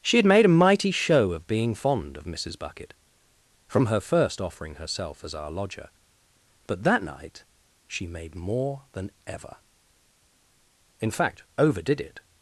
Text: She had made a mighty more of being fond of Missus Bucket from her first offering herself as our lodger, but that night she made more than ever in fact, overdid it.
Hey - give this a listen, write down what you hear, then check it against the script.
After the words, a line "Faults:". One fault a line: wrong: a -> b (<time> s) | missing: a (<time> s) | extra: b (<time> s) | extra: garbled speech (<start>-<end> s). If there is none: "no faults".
She had made a mighty show of being fond of Missus Bucket from her first offering herself as our lodger, but that night she made more than ever in fact, overdid it.
Faults:
wrong: more -> show (0.9 s)